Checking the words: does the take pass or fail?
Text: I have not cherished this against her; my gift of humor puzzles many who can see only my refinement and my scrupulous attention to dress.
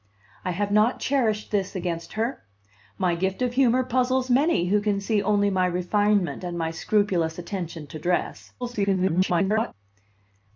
fail